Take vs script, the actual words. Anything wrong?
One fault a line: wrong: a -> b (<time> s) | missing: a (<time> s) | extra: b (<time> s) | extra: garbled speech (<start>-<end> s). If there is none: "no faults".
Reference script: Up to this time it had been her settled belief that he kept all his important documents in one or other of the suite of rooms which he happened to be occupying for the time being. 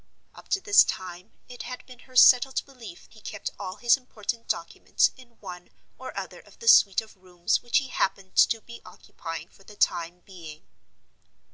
missing: that (3.1 s)